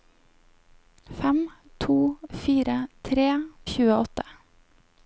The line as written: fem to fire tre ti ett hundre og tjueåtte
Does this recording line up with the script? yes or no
no